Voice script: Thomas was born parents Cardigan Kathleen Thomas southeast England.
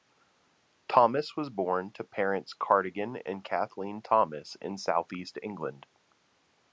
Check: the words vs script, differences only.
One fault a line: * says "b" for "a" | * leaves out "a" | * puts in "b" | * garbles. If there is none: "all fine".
* puts in "to"
* puts in "and"
* puts in "in"